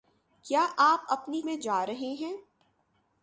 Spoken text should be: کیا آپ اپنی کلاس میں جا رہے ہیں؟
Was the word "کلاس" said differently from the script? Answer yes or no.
yes